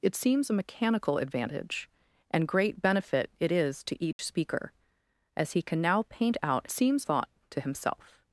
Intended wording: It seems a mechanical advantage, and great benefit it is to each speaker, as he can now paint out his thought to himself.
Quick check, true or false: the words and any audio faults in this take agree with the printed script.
false